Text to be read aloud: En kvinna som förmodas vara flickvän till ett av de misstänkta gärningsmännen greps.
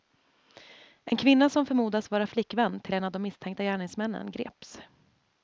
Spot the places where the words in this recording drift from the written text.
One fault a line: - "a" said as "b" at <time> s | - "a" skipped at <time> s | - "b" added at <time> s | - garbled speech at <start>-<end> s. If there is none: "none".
- "ett" said as "en" at 2.9 s